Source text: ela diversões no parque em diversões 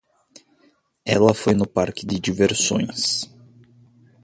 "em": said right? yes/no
no